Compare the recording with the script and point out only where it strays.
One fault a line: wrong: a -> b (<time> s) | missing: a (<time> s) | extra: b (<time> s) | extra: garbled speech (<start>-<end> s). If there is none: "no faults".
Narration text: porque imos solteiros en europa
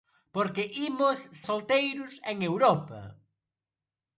no faults